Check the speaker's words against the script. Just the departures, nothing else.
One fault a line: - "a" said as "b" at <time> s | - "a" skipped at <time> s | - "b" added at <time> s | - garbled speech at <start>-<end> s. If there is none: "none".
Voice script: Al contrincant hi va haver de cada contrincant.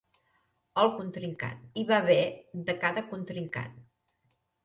none